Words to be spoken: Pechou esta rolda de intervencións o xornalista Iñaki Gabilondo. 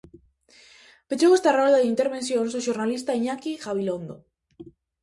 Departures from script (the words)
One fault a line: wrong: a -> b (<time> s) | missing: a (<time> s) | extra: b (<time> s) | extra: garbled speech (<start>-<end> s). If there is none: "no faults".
no faults